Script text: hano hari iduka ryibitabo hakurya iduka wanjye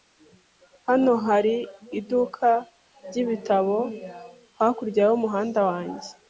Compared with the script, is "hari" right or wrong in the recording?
right